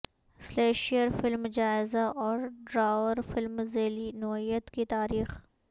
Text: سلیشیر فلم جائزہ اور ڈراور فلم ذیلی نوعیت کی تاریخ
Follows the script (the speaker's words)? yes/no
yes